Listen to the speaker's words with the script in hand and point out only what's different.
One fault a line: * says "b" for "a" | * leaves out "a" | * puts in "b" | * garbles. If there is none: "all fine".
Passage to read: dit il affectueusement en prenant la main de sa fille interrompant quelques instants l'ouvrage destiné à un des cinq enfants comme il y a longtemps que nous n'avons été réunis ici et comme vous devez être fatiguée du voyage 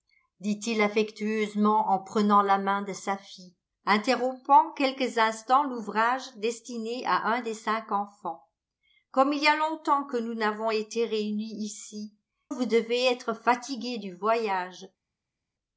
* leaves out "et comme"